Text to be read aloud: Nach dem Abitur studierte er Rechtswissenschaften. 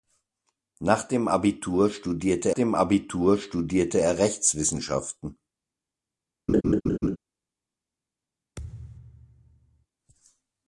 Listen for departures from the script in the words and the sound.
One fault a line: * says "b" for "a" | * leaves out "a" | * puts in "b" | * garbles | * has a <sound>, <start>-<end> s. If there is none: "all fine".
* puts in "dem Abitur studierte"
* has a laugh, 6.5-7.2 s
* has a thud, 8.6-9.9 s